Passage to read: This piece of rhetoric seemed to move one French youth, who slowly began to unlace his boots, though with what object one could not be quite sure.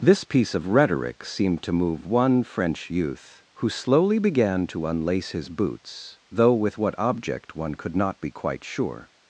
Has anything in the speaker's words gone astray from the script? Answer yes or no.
no